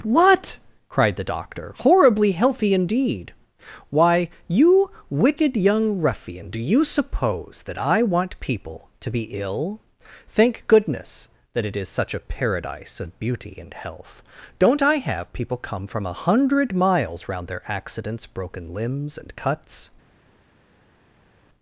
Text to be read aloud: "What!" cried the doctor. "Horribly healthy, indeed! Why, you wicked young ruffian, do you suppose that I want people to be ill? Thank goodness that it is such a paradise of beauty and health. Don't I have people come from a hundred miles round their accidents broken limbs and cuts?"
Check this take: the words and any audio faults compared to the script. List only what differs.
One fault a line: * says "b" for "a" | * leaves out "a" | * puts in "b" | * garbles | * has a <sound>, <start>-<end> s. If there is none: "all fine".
all fine